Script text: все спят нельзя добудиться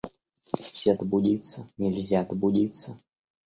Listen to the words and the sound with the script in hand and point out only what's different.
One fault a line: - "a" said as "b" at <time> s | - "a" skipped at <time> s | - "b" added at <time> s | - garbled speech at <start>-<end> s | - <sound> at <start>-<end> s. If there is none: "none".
- "спят" said as "добудиться" at 0.9 s